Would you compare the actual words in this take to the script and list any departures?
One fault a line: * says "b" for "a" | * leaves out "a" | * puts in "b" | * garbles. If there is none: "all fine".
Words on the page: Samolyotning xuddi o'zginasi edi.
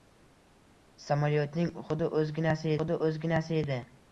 * puts in "xuddi o'zginasi"